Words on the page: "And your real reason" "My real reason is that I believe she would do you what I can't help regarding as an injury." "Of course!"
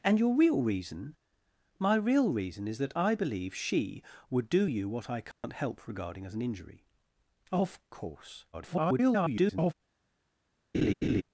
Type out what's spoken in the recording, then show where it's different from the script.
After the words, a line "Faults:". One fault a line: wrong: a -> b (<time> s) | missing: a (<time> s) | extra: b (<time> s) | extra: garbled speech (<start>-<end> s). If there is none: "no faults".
"And your real reason" "My real reason is that I believe she would do you what I can't help regarding as an injury." "Of course!" [garbled]
Faults:
extra: garbled speech (8.5-9.7 s)